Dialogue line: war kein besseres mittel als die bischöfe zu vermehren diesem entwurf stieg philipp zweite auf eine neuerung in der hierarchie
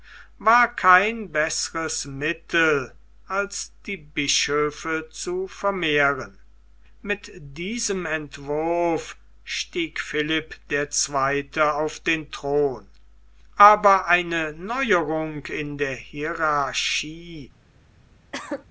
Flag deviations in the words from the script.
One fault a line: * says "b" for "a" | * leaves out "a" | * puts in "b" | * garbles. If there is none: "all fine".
* puts in "mit"
* puts in "der"
* puts in "den thron aber"